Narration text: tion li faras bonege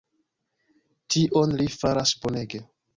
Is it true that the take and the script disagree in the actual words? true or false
false